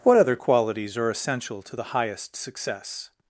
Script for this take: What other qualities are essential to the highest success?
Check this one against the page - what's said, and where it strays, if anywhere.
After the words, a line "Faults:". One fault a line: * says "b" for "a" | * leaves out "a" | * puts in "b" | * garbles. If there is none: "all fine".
What other qualities are essential to the highest success?
Faults:
all fine